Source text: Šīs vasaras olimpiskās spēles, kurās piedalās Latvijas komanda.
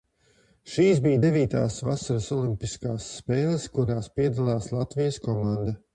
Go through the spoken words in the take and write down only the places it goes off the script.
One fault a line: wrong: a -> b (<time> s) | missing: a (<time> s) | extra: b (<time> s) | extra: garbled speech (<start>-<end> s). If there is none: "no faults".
extra: bija devītās (1.0 s)